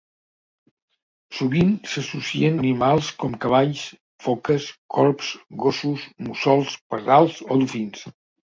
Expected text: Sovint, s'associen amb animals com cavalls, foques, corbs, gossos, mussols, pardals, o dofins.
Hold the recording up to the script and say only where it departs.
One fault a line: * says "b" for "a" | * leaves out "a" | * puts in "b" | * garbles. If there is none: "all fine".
* leaves out "amb"